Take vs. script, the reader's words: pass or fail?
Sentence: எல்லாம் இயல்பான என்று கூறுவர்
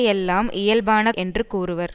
pass